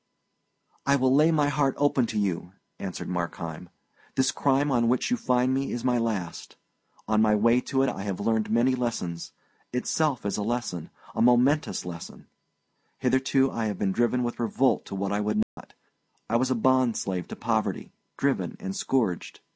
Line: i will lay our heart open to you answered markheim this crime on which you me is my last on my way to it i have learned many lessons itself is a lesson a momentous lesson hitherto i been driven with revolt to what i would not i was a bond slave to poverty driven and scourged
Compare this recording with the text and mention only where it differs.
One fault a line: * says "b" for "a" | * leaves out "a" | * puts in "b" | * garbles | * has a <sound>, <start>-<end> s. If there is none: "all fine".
* says "my" for "our"
* puts in "find"
* puts in "have"
* has a dropout, 15.4-15.6 s